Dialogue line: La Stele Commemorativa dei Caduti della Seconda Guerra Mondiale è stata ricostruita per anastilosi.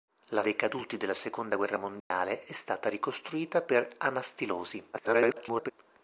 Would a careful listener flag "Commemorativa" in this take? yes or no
yes